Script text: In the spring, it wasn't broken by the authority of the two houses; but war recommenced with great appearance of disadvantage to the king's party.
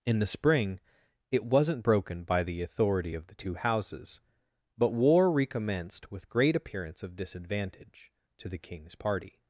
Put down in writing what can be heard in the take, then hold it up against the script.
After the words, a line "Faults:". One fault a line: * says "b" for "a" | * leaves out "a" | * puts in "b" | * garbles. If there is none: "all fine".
In the spring, it wasn't broken by the authority of the two houses; but war recommenced with great appearance of disadvantage to the king's party.
Faults:
all fine